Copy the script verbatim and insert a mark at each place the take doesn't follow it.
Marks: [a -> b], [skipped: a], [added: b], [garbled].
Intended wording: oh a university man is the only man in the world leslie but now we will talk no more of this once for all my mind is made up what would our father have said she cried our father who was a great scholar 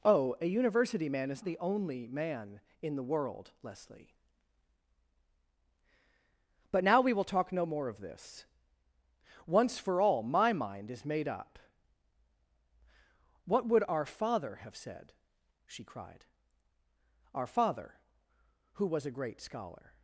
oh a university man is the only man in the world leslie but now we will talk no more of this once for all my mind is made up what would our father have said she cried our father who was a great scholar